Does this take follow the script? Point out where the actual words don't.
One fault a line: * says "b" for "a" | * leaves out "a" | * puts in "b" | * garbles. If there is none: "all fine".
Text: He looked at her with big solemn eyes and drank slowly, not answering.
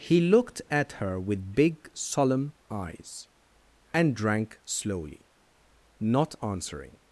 all fine